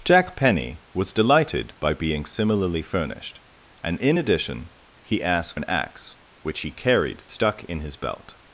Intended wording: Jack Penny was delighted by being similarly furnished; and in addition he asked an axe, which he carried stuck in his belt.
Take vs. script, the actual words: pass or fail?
pass